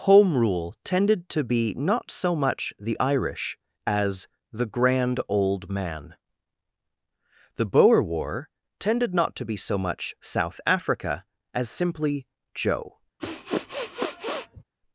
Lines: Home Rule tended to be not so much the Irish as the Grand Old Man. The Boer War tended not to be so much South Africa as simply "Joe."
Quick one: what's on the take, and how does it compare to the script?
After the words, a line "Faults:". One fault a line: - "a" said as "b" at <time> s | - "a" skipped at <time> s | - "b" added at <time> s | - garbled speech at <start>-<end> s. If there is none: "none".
Home Rule tended to be not so much the Irish as the Grand Old Man. The Boer War tended not to be so much South Africa as simply "Joe."
Faults:
none